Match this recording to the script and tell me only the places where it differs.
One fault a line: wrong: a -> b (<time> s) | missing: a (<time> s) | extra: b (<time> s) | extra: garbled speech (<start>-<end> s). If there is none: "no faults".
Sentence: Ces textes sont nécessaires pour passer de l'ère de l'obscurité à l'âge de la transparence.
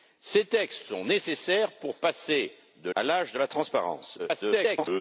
missing: l'ère de l'obscurité (2.9 s)
extra: garbled speech (4.2-5.0 s)